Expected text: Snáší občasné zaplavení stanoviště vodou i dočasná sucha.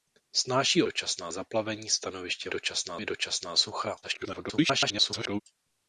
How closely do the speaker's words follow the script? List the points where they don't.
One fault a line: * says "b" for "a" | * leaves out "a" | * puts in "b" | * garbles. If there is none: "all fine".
* says "dočasná" for "občasné"
* says "dočasná" for "vodou"
* garbles